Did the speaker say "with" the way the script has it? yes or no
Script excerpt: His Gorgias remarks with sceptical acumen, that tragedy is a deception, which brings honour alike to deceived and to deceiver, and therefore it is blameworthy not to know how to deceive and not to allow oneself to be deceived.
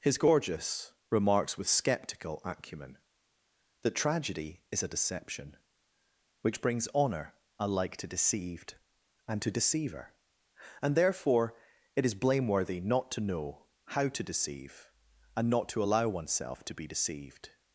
yes